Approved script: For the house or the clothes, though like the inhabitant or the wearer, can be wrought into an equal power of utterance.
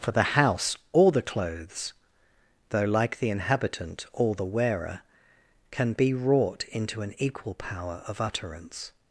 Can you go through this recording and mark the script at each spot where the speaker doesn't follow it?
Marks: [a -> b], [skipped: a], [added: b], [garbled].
For the house or the clothes, though like the inhabitant or the wearer, can be wrought into an equal power of utterance.